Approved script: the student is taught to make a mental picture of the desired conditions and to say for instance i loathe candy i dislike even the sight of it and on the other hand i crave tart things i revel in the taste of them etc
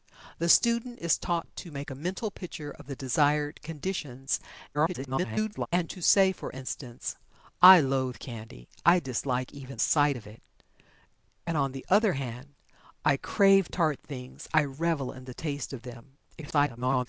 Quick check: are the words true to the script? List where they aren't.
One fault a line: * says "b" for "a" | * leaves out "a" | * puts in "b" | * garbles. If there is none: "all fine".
* garbles
* leaves out "the"
* garbles